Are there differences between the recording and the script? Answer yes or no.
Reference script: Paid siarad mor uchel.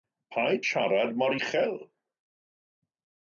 no